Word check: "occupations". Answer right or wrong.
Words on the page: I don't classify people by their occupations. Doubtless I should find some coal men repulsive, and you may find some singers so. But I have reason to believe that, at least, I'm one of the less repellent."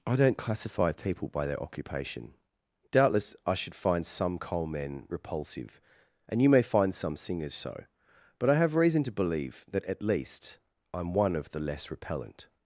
wrong